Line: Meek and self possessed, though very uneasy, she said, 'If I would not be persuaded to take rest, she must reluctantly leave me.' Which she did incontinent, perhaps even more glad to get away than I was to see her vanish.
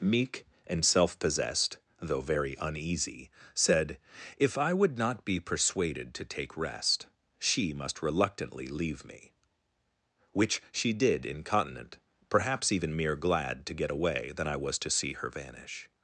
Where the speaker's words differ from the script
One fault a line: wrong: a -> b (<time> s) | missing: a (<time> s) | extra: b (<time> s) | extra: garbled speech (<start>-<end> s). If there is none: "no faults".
missing: she (3.3 s)
wrong: more -> mere (13.0 s)